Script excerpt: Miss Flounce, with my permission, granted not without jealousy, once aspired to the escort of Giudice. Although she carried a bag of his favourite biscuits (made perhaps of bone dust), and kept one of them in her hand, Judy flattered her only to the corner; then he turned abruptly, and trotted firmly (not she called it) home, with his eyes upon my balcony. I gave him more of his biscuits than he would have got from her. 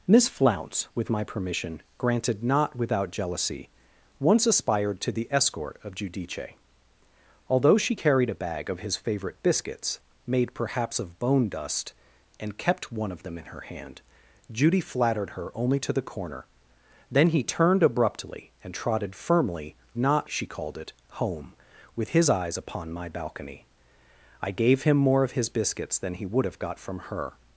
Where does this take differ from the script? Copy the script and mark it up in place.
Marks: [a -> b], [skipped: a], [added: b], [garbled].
Miss Flounce, with my permission, granted not without jealousy, once aspired to the escort of Giudice. Although she carried a bag of his favourite biscuits (made perhaps of bone dust), and kept one of them in her hand, Judy flattered her only to the corner; then he turned abruptly, and trotted firmly (not she called it) home, with his eyes upon my balcony. I gave him more of his biscuits than he would have got from her.